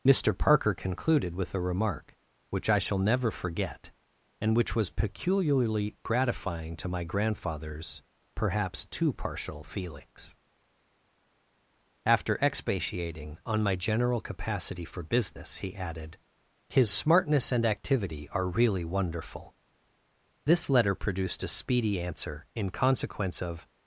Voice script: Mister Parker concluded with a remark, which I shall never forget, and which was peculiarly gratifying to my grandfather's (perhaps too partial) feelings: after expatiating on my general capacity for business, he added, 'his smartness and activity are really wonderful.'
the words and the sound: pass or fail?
fail